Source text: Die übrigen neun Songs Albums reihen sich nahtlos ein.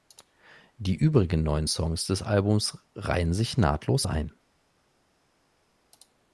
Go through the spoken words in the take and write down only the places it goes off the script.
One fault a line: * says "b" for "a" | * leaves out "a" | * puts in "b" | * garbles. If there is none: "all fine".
* puts in "des"